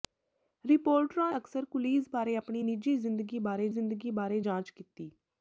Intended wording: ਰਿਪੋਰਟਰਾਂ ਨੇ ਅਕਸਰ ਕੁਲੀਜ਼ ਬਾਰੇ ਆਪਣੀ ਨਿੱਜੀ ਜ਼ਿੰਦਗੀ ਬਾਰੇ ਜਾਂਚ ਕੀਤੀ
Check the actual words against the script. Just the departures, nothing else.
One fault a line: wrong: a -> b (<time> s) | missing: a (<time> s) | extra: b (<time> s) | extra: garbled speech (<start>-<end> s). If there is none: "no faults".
missing: ਨੇ (1.3 s)
extra: ਜ਼ਿੰਦਗੀ ਬਾਰੇ (3.7 s)